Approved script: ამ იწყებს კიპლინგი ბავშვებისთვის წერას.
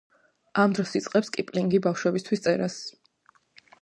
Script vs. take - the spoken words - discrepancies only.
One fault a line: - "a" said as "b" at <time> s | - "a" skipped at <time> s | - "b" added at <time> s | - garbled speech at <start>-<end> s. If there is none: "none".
- "დროს" added at 0.8 s